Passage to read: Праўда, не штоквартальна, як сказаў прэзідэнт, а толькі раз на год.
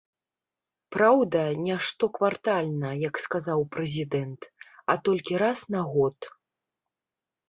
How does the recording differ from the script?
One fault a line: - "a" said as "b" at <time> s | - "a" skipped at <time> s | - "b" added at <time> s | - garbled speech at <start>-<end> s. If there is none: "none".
none